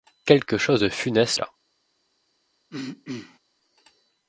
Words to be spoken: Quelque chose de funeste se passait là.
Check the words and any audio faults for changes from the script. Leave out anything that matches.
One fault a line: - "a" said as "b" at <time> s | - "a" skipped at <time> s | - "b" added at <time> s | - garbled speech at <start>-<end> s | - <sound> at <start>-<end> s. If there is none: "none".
- "se passait" skipped at 1.3 s
- throat clearing at 2.7-3.4 s